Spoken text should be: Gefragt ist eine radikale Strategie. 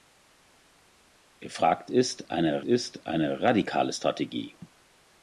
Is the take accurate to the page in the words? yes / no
no